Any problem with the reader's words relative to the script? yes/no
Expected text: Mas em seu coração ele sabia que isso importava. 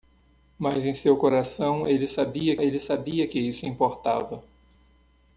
yes